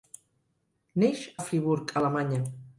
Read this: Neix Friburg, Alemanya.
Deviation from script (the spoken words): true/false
false